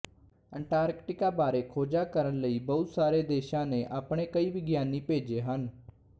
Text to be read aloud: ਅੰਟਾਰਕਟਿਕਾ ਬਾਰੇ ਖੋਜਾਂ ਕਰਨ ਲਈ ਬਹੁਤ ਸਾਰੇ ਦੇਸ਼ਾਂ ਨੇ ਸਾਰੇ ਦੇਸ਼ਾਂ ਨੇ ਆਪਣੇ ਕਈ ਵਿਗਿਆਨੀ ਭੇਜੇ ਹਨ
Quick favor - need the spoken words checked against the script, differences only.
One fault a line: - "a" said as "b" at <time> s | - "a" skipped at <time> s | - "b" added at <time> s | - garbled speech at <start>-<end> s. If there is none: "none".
- "ਸਾਰੇ ਦੇਸ਼ਾਂ ਨੇ" skipped at 3.9 s